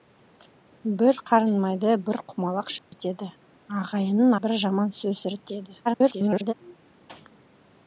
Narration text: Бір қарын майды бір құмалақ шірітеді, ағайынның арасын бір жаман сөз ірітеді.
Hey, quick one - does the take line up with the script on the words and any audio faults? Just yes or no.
no